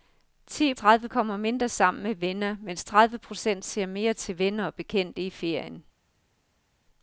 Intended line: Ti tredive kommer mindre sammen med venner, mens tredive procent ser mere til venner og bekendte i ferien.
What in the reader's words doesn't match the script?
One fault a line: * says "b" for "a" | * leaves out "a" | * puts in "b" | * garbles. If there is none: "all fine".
all fine